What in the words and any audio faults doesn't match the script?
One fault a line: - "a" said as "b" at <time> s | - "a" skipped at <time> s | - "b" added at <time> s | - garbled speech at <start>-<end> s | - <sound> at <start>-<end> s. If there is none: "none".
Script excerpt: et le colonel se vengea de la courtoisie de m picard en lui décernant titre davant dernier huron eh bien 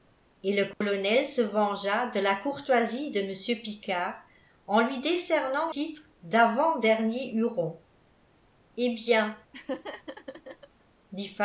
- dropout at 0.7-0.8 s
- laugh at 9.5-10.7 s